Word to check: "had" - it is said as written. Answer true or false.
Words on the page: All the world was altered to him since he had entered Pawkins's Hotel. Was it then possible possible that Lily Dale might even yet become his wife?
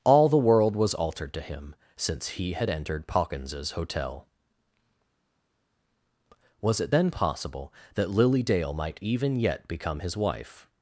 true